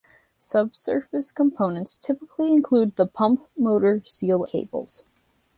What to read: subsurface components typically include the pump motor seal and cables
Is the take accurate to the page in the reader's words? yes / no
no